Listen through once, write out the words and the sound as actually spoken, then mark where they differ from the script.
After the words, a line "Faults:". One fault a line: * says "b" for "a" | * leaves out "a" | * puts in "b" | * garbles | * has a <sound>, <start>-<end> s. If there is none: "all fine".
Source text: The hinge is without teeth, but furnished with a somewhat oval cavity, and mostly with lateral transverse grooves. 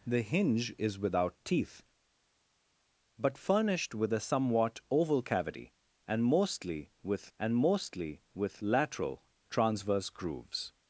The hinge is without teeth, but furnished with a somewhat oval cavity, and mostly with and mostly with lateral transverse grooves.
Faults:
* puts in "and mostly with"